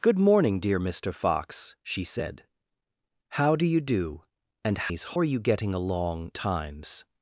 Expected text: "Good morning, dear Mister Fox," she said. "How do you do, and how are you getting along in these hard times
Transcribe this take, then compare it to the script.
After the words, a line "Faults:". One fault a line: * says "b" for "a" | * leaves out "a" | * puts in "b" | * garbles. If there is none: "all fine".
"Good morning, dear Mister Fox," she said. "How do you do, and these are you getting along times
Faults:
* says "these" for "how"
* leaves out "in these hard"